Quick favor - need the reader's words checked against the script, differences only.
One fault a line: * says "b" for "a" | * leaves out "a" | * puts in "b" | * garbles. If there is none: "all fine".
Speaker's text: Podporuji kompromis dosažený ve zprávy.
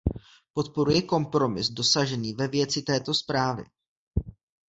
* puts in "věci této"